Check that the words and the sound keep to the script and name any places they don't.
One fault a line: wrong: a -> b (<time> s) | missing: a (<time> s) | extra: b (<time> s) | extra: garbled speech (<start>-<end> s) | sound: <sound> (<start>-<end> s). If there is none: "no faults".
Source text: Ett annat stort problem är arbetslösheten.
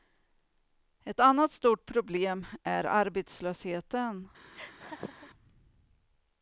sound: laugh (4.5-5.3 s)